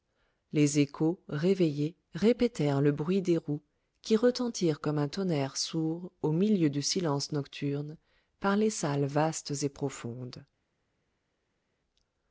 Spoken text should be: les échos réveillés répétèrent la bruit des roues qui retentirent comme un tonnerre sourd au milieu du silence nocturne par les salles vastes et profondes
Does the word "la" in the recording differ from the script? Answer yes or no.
yes